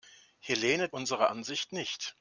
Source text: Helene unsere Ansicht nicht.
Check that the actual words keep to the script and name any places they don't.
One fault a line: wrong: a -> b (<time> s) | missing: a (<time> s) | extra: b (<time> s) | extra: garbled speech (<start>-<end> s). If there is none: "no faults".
no faults